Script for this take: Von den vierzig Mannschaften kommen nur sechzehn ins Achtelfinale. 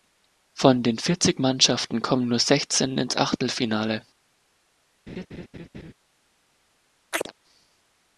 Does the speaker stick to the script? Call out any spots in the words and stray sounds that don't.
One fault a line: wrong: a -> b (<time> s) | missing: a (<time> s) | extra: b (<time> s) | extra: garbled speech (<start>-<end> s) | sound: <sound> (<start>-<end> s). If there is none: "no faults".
sound: laugh (5.1-5.9 s)
sound: chirp (7.1-7.3 s)